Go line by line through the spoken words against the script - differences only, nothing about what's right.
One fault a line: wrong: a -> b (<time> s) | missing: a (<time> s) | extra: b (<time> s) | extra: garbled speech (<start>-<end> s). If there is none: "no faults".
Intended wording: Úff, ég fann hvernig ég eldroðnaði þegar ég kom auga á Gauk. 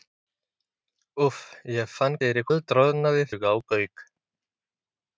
wrong: hvernig -> þegar (2.2 s)
missing: þegar ég kom (3.3 s)